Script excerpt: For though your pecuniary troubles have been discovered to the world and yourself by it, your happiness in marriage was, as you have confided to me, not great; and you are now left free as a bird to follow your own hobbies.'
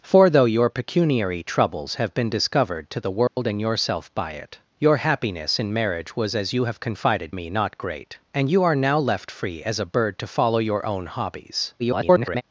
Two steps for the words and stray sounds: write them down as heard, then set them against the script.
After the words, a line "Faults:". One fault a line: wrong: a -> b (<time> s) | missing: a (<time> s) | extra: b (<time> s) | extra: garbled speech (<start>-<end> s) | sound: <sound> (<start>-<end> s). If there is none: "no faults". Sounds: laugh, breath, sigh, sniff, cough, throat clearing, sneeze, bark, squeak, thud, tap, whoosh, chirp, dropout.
For though your pecuniary troubles have been discovered to the world and yourself by it, your happiness in marriage was, as you have confided me, not great; and you are now left free as a bird to follow your own hobbies.' [garbled]
Faults:
sound: dropout (3.3-3.4 s)
missing: to (7.3 s)
extra: garbled speech (11.8-12.4 s)